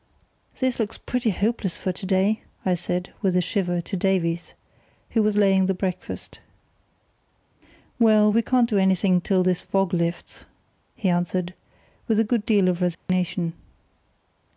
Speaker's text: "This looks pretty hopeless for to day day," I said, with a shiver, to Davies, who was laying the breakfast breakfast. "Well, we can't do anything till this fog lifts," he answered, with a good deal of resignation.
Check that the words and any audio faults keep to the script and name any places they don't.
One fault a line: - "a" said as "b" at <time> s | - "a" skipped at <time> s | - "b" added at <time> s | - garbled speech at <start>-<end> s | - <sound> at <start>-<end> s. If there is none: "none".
- "day" skipped at 2.4 s
- "breakfast" skipped at 6.4 s
- dropout at 12.9-13.1 s